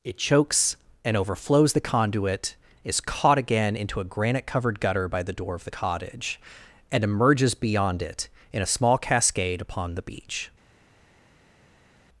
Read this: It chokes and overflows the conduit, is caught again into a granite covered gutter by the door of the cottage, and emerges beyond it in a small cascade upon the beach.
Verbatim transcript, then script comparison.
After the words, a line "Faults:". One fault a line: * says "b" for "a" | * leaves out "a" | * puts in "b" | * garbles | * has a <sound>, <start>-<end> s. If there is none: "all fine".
It chokes and overflows the conduit, is caught again into a granite covered gutter by the door of the cottage, and emerges beyond it in a small cascade upon the beach.
Faults:
all fine